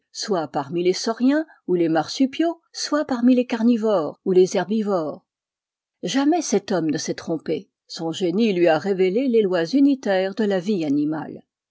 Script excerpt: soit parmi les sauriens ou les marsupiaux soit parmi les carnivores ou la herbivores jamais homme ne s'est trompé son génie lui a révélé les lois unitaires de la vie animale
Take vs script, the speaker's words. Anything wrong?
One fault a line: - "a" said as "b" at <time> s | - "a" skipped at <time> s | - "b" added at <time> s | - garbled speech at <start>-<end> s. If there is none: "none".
- "la" said as "les" at 4.3 s
- "cet" added at 6.4 s